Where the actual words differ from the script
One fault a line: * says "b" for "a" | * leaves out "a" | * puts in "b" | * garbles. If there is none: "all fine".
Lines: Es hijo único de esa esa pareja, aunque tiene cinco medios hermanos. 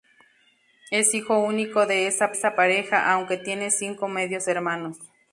all fine